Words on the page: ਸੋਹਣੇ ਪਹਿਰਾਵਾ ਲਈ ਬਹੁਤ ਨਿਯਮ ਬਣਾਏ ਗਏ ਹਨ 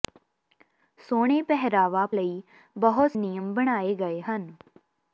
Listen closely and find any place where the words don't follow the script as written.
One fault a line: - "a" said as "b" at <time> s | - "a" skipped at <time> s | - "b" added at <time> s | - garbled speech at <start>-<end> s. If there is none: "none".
none